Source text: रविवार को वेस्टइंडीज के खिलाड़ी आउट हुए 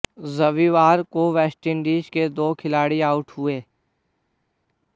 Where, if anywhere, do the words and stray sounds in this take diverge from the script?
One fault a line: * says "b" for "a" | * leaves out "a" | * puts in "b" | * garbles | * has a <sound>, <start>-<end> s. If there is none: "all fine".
* puts in "दो"